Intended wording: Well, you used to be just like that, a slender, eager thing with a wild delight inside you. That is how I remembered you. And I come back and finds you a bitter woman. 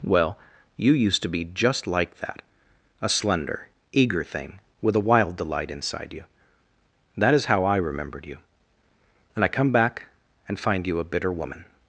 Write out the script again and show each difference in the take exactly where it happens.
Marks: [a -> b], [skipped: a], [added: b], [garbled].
Well, you used to be just like that, a slender, eager thing with a wild delight inside you. That is how I remembered you. And I come back and [finds -> find] you a bitter woman.